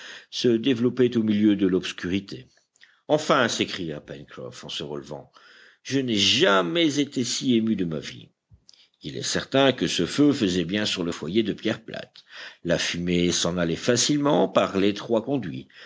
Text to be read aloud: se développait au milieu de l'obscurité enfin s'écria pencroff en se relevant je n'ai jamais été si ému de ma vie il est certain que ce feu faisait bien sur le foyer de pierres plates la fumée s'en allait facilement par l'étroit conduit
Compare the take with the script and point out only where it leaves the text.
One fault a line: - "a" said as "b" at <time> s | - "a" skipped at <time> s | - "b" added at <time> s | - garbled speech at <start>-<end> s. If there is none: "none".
none